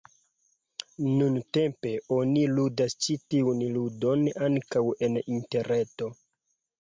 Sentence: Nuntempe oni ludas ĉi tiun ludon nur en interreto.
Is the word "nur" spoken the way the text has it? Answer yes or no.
no